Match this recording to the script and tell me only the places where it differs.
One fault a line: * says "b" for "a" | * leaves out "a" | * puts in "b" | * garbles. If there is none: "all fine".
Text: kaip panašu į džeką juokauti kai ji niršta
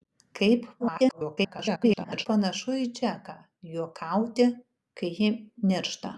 * garbles